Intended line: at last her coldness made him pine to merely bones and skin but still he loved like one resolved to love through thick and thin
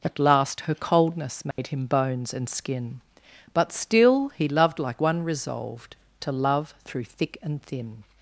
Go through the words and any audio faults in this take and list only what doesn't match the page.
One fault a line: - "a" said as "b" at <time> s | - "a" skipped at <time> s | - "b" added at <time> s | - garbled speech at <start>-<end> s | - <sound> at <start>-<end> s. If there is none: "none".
- dropout at 1.5-1.6 s
- "pine to merely" skipped at 1.9 s